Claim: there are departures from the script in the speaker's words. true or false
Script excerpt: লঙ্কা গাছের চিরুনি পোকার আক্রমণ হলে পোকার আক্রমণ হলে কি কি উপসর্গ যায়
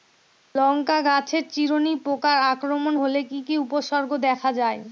true